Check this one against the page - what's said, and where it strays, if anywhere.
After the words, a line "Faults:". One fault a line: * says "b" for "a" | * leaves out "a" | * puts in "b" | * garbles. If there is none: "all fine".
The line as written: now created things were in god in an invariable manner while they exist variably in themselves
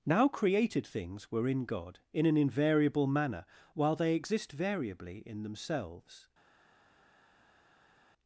now created things were in god in an invariable manner while they exist variably in themselves
Faults:
all fine